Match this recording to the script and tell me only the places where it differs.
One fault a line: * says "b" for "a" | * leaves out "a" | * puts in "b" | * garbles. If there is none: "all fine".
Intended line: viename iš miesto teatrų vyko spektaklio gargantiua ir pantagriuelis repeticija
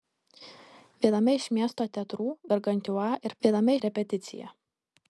* leaves out "vyko spektaklio"
* says "viename" for "pantagriuelis"